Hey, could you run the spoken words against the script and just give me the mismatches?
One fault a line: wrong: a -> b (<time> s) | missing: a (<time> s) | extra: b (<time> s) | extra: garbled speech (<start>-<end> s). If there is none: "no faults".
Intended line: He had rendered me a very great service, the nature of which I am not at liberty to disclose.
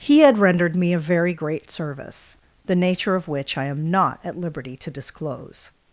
no faults